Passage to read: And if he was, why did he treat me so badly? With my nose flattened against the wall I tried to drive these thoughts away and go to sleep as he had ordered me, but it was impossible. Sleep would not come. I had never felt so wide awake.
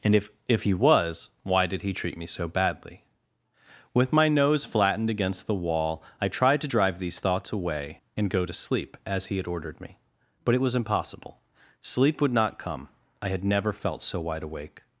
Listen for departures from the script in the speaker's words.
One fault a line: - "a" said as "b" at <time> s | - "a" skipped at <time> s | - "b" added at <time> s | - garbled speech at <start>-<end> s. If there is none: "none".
- "if" added at 0.5 s